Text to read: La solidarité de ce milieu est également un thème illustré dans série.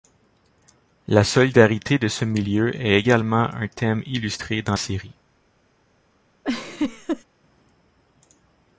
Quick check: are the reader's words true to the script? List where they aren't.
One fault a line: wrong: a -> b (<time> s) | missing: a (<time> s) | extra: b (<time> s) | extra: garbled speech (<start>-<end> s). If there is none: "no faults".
no faults